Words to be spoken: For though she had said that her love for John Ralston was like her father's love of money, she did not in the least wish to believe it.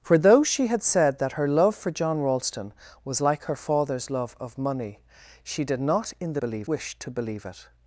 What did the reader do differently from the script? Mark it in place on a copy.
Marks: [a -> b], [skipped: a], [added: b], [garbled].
For though she had said that her love for John Ralston was like her father's love of money, she did not in the [least -> believe] wish to believe it.